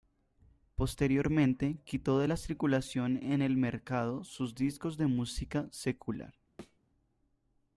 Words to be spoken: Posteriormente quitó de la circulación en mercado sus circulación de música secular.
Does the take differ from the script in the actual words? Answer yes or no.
yes